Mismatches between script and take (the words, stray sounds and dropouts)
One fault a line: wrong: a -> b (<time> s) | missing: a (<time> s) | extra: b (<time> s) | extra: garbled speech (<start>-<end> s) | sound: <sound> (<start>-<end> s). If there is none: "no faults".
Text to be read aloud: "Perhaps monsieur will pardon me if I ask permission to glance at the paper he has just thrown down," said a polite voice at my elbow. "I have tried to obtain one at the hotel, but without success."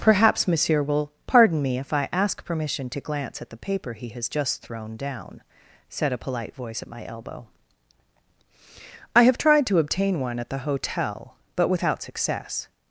no faults